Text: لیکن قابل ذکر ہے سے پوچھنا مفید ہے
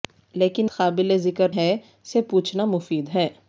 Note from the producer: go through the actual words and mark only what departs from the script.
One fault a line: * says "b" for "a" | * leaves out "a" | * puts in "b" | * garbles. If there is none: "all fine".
all fine